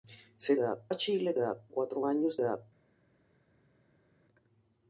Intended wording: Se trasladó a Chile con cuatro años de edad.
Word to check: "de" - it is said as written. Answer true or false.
false